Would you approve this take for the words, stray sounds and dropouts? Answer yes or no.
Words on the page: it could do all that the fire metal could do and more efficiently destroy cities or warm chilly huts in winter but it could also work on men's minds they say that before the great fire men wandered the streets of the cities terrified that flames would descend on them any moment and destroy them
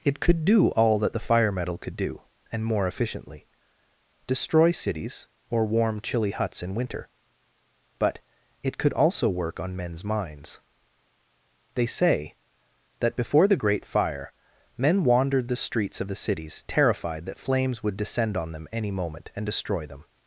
yes